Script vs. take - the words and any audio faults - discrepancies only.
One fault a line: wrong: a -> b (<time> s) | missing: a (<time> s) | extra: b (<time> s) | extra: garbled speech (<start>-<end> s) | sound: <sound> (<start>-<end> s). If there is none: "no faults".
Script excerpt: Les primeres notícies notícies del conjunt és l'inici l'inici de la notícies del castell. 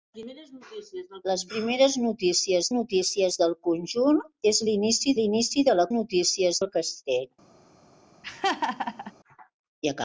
sound: laugh (8.2-9.1 s)